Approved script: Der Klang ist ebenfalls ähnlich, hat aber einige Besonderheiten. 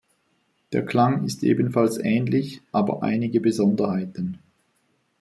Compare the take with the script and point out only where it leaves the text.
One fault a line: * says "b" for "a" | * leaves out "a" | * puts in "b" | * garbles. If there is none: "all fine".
* leaves out "hat"